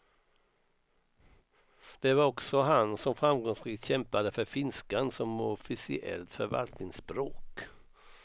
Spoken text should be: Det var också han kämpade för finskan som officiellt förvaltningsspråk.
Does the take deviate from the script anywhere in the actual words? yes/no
yes